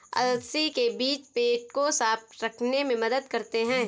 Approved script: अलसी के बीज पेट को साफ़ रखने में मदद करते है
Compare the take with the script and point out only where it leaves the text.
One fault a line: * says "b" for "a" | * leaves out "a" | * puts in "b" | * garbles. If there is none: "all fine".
all fine